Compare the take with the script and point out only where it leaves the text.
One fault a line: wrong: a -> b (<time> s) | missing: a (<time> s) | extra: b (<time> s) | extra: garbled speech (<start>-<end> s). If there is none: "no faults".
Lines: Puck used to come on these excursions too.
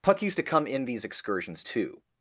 wrong: on -> in (0.6 s)